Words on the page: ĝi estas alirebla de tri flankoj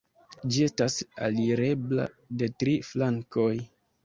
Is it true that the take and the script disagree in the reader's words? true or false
false